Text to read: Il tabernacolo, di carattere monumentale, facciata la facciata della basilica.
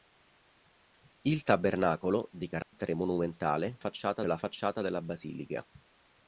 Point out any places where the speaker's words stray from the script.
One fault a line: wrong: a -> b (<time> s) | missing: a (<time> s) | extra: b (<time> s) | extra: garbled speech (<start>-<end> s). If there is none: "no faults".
no faults